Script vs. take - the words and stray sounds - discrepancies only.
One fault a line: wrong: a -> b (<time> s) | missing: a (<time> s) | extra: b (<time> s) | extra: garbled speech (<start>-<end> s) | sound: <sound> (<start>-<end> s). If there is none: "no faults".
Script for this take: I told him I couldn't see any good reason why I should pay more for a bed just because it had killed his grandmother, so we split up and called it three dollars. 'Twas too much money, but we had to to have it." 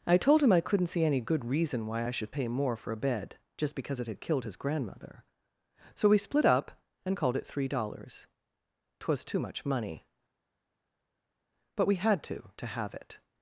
no faults